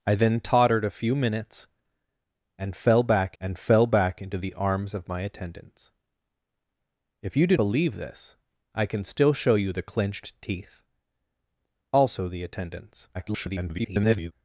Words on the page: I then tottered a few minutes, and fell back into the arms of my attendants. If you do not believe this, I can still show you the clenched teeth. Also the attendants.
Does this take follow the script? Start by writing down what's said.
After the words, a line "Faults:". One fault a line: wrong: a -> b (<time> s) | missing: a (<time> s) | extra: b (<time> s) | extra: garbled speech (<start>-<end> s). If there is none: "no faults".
I then tottered a few minutes, and fell back and fell back into the arms of my attendants. If you do believe this, I can still show you the clenched teeth. Also the attendants. [garbled]
Faults:
extra: and fell back (3.4 s)
missing: not (7.6 s)
extra: garbled speech (13.1-14.3 s)